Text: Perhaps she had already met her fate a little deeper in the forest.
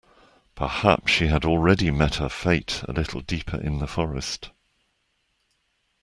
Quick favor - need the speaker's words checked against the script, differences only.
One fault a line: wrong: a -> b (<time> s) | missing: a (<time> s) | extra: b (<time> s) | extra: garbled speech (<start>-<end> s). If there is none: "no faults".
no faults